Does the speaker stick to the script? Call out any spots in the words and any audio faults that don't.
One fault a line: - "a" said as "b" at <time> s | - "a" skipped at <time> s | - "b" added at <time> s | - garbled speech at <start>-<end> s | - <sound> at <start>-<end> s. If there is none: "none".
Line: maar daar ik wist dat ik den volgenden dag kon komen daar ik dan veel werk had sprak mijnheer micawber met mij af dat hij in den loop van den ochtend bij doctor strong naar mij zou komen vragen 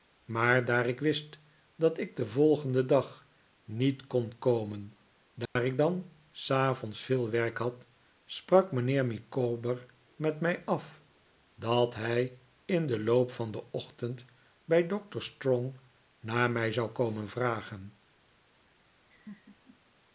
- "niet" added at 3.6 s
- dropout at 5.5-5.6 s
- "s avonds" added at 6.3 s
- laugh at 19.1-19.8 s